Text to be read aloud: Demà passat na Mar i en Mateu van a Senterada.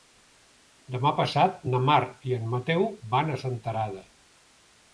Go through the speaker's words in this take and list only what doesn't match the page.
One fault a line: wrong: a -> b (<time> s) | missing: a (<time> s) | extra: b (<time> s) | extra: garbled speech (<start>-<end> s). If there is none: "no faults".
no faults